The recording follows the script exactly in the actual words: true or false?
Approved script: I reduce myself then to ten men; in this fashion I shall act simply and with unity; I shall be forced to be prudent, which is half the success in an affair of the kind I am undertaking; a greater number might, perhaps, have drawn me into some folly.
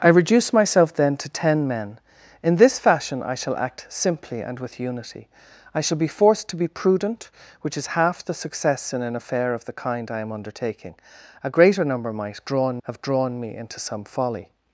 false